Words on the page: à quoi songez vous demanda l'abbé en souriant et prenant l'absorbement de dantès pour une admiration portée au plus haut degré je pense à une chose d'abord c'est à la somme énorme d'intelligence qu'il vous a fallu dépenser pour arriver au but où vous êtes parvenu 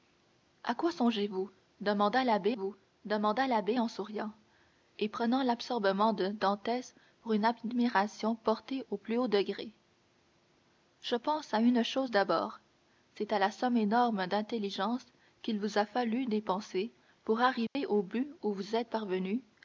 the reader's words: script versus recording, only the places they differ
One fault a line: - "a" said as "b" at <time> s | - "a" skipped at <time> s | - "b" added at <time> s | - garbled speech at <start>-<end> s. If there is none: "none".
- "vous demanda l'abbé" added at 2.5 s